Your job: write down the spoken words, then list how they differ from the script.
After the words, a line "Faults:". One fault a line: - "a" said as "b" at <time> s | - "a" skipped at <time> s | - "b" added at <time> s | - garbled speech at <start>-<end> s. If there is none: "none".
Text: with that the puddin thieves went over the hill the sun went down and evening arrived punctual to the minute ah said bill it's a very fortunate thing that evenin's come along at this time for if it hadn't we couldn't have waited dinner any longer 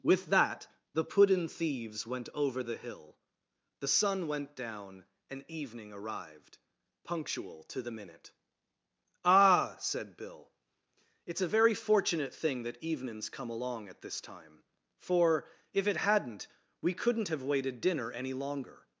with that the puddin thieves went over the hill the sun went down and evening arrived punctual to the minute ah said bill it's a very fortunate thing that evenin's come along at this time for if it hadn't we couldn't have waited dinner any longer
Faults:
none